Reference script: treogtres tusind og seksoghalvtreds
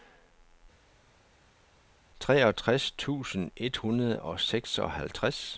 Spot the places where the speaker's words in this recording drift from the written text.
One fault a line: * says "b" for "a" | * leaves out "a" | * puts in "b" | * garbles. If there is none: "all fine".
* puts in "et hundrede"